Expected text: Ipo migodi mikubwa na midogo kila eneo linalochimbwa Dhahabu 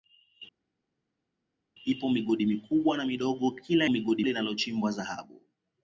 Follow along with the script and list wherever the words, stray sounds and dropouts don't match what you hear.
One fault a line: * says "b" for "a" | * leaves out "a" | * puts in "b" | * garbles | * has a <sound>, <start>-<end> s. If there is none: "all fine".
* says "migodi" for "eneo"